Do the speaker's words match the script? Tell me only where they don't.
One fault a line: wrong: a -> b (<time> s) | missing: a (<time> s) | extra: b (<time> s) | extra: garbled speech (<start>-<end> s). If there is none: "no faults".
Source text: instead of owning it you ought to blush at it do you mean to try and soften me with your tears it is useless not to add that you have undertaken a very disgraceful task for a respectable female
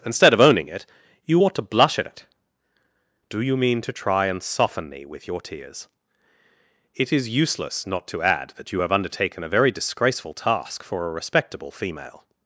no faults